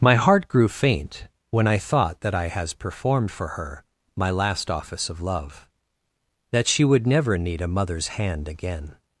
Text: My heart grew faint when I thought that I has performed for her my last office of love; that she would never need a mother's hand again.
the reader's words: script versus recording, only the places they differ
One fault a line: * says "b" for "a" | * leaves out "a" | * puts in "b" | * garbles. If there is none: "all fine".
all fine